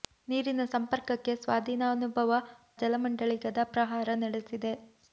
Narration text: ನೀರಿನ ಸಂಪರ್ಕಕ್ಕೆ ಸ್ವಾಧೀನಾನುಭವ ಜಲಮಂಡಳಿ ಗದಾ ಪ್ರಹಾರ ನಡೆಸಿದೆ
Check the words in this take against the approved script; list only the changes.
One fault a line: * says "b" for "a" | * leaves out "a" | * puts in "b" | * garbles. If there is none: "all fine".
all fine